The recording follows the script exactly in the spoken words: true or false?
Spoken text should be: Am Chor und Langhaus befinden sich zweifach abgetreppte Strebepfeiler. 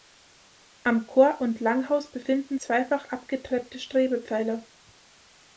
false